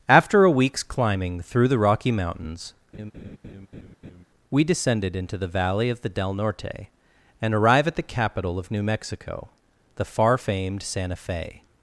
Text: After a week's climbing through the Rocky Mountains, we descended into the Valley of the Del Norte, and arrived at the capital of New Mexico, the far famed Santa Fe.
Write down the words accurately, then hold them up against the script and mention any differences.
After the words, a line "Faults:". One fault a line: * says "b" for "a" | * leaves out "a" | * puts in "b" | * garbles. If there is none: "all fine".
After a week's climbing through the Rocky Mountains, we descended into the Valley of the Del Norte, and arrive at the capital of New Mexico, the far famed Santa Fe.
Faults:
* says "arrive" for "arrived"